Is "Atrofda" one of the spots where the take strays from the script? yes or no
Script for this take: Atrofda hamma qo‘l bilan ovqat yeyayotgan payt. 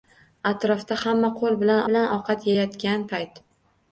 no